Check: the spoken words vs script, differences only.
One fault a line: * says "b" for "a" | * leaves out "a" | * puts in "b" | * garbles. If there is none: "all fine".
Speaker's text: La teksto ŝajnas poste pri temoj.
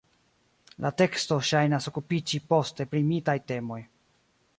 * puts in "okupiĝi"
* puts in "mitaj"